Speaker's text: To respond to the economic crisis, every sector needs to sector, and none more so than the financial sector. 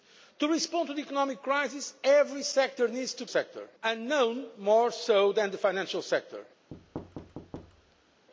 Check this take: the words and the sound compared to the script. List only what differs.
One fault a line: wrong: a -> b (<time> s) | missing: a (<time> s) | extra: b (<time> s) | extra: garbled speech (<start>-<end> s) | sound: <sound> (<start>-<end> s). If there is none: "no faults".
sound: thud (6.7-8.3 s)